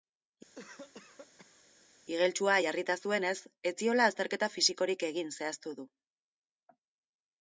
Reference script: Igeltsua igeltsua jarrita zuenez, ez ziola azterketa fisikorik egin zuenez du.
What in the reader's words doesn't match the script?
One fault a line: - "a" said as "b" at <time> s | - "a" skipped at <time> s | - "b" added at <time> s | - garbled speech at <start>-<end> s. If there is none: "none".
- "igeltsua" skipped at 2.6 s
- "zuenez" said as "zehaztu" at 5.4 s